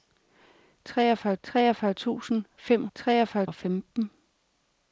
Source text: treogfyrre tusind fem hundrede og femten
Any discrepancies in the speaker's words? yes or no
yes